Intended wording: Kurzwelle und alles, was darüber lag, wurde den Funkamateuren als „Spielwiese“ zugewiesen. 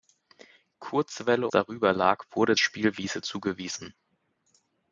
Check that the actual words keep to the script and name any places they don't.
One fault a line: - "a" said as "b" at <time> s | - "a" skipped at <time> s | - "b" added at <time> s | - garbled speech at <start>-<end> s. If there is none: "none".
- "und alles was" skipped at 1.5 s
- "den Funkamateuren als" skipped at 2.6 s